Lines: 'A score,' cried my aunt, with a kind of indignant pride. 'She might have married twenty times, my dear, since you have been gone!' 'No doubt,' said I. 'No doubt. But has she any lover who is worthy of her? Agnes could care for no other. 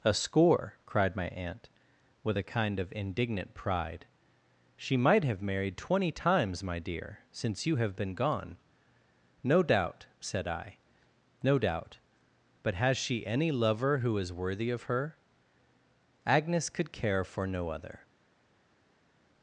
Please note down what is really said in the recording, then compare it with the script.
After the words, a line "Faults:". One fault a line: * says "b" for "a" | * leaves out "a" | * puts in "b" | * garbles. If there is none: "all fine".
'A score,' cried my aunt, with a kind of indignant pride. 'She might have married twenty times, my dear, since you have been gone!' 'No doubt,' said I. 'No doubt. But has she any lover who is worthy of her? Agnes could care for no other.
Faults:
all fine